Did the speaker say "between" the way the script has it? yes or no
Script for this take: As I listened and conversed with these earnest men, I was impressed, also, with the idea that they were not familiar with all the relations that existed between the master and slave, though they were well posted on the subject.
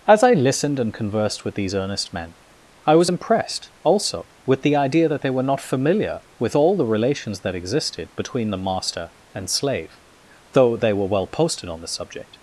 yes